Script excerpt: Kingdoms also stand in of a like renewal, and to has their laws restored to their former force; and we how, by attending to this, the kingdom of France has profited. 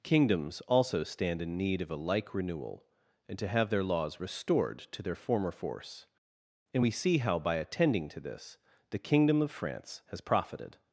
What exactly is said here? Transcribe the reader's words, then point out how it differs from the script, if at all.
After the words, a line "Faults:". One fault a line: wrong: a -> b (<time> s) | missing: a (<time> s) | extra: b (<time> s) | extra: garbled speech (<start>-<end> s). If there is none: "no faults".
Kingdoms also stand in need of a like renewal, and to have their laws restored to their former force; and we see how, by attending to this, the kingdom of France has profited.
Faults:
extra: need (1.6 s)
wrong: has -> have (3.5 s)
extra: see (6.9 s)